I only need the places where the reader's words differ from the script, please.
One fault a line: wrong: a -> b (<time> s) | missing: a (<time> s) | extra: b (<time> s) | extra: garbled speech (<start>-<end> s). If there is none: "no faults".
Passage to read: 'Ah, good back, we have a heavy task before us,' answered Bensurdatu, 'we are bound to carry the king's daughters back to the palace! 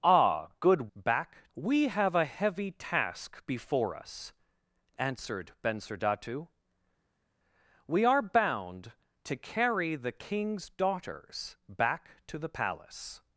no faults